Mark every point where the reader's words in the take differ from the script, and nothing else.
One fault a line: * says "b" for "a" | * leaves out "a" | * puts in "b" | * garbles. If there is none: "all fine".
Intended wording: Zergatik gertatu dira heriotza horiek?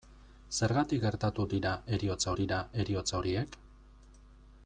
* puts in "dira heriotza"